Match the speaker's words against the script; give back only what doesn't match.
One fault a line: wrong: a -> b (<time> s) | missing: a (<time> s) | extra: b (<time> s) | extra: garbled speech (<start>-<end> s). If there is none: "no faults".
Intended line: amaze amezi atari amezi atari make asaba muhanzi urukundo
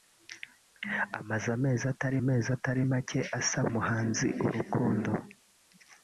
no faults